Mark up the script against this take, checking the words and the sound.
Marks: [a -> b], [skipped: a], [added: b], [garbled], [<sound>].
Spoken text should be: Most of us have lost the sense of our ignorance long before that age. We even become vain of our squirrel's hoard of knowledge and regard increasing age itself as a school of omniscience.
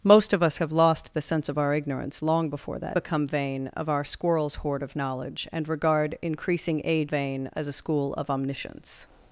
Most of us have lost the sense of our ignorance long before that [skipped: age. We even] become vain of our squirrel's hoard of knowledge and regard increasing age [itself -> vain] as a school of omniscience.